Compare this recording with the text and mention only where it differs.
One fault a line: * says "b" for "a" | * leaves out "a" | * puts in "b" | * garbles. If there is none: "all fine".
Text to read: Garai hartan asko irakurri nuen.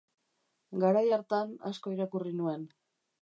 all fine